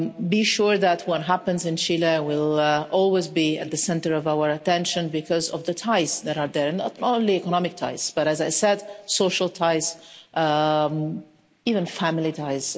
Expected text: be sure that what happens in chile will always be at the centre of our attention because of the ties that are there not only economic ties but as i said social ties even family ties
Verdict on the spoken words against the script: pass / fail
pass